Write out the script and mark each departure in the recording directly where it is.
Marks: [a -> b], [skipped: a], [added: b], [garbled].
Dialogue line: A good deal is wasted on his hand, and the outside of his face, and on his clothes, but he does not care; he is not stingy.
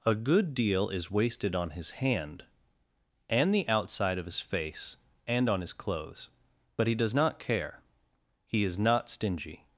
A good deal is wasted on his hand, and the outside of his face, and on his clothes, but he does not care; he is not stingy.